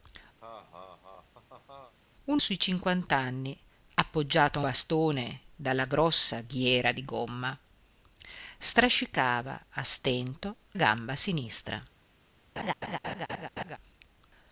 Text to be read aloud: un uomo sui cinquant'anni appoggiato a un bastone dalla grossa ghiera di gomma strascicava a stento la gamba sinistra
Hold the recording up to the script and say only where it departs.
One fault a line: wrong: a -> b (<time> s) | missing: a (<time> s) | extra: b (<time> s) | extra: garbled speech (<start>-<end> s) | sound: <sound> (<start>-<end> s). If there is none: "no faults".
sound: laugh (0.4-1.9 s)
missing: uomo (2.4 s)
missing: un (4.6 s)
missing: la (10.5 s)
sound: laugh (12.6-13.8 s)